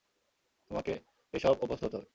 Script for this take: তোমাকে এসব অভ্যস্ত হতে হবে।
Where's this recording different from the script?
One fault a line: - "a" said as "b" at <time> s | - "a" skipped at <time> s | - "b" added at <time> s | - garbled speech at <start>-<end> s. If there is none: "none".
none